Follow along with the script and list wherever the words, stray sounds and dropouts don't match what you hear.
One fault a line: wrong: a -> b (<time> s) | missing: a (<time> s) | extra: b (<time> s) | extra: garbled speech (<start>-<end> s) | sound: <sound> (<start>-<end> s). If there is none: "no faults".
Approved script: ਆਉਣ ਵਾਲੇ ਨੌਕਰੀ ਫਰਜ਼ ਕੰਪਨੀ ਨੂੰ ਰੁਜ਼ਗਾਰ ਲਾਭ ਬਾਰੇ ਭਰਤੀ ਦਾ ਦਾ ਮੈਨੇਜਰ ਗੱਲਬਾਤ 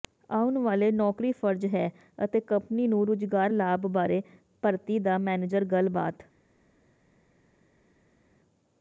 extra: ਹੈ ਅਤੇ (1.7 s)
missing: ਦਾ (5.2 s)